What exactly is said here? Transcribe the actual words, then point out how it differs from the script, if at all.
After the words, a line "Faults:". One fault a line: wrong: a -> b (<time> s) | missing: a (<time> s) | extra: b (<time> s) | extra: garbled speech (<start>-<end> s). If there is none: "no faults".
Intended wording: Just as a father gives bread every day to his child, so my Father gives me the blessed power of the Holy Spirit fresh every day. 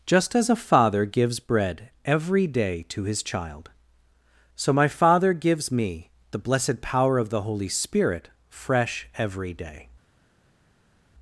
Just as a father gives bread every day to his child, so my Father gives me the blessed power of the Holy Spirit fresh every day.
Faults:
no faults